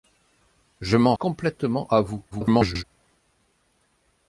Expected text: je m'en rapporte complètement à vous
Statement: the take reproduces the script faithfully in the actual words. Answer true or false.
false